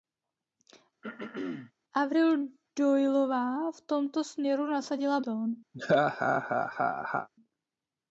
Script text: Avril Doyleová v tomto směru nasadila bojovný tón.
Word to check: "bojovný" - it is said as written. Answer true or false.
false